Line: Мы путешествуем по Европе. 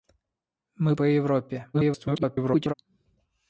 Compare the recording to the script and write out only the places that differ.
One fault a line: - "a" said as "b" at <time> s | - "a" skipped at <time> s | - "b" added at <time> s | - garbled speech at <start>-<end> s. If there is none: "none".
- "путешествуем" skipped at 0.9 s
- garbled speech at 1.7-2.7 s